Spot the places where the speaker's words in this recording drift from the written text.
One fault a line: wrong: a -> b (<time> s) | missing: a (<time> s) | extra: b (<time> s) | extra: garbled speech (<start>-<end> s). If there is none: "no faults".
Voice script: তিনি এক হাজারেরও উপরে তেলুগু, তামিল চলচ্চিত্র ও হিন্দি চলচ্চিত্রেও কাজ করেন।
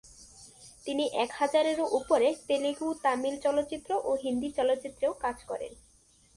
no faults